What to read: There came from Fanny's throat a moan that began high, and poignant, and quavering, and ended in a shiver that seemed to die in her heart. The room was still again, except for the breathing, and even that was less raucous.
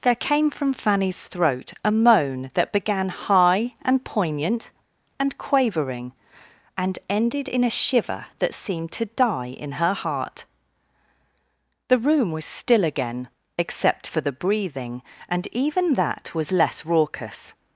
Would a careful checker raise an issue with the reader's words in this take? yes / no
no